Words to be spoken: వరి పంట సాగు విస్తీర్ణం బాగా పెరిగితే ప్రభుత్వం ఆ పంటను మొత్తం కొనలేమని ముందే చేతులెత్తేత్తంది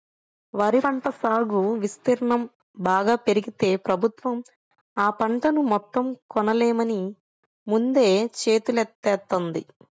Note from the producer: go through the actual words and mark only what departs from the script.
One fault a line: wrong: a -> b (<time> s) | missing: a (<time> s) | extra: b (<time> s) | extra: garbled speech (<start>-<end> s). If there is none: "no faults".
no faults